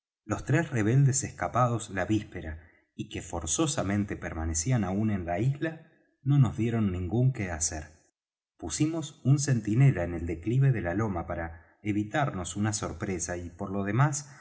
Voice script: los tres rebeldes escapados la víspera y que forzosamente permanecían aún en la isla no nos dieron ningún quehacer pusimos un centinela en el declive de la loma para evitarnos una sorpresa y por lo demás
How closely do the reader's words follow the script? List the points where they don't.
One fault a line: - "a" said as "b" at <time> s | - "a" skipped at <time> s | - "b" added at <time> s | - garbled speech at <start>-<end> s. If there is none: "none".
none